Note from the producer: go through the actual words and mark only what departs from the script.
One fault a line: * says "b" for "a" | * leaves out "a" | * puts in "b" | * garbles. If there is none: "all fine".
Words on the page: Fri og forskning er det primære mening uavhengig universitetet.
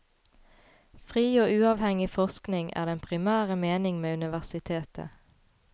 * puts in "uavhengig"
* says "den" for "det"
* says "med" for "uavhengig"